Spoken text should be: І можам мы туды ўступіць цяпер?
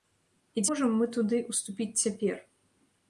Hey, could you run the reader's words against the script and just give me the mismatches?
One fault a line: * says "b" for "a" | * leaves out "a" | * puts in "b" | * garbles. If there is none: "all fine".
all fine